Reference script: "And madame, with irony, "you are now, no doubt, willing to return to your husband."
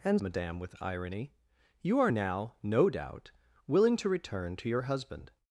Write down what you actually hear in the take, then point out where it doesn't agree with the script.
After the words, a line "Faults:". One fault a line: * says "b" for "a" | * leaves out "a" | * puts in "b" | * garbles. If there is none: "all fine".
"And madame, with irony, "you are now, no doubt, willing to return to your husband."
Faults:
all fine